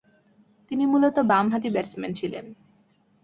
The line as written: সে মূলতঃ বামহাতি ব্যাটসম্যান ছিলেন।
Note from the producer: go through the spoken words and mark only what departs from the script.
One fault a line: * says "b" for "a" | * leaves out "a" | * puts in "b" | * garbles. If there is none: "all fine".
* says "তিনি" for "সে"